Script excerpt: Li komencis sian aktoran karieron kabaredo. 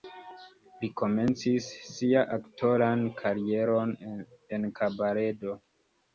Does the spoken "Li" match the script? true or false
true